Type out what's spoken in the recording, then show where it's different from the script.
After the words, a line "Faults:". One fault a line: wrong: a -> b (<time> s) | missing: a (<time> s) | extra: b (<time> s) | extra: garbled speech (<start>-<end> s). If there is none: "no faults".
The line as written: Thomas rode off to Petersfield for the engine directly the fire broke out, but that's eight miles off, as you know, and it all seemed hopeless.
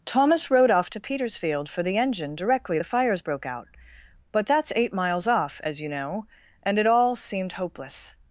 Thomas rode off to Petersfield for the engine directly the fires broke out, but that's eight miles off, as you know, and it all seemed hopeless.
Faults:
wrong: fire -> fires (2.8 s)